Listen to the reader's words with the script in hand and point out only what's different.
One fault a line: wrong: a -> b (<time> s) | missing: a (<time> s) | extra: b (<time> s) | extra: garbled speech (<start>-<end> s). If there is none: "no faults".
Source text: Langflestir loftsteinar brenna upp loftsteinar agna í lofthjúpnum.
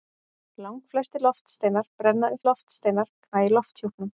no faults